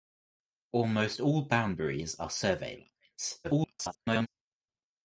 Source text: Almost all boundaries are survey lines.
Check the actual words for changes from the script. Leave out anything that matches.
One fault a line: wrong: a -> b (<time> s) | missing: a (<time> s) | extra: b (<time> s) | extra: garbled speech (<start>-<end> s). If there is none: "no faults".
extra: garbled speech (3.4-4.3 s)